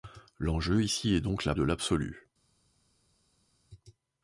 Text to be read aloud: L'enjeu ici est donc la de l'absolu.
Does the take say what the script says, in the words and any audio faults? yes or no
yes